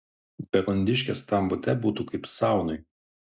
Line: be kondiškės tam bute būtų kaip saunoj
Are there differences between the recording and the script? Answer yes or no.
no